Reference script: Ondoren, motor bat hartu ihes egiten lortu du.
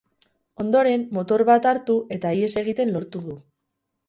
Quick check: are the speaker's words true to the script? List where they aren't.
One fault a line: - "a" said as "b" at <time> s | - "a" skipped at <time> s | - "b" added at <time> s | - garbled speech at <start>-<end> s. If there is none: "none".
- "eta" added at 2.2 s